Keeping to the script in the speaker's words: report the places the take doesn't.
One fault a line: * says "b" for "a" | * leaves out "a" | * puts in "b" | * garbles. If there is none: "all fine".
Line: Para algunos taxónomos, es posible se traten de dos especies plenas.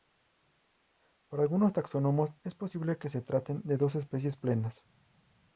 * puts in "que"